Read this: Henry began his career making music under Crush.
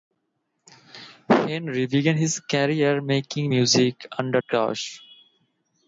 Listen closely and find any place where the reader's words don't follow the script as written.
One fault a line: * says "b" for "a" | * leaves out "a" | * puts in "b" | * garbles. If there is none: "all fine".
all fine